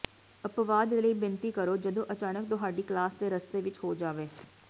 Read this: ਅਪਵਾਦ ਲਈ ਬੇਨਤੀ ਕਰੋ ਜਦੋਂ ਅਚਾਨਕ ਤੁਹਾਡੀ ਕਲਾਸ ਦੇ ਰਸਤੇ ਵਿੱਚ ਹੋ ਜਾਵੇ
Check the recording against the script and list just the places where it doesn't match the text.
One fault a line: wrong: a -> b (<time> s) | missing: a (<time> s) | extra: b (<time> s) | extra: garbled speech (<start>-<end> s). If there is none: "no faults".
no faults